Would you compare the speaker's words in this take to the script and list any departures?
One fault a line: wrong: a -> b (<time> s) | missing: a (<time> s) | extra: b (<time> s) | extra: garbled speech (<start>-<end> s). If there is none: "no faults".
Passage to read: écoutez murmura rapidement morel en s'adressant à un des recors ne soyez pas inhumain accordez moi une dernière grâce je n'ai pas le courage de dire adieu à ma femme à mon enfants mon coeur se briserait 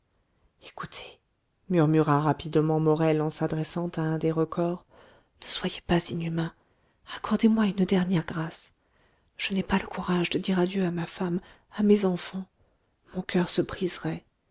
wrong: mon -> mes (11.8 s)